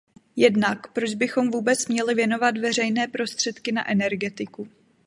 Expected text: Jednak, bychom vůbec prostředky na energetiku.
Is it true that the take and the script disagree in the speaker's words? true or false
true